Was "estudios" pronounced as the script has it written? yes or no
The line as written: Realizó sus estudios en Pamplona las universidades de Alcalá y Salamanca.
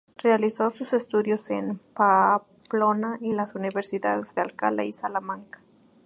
yes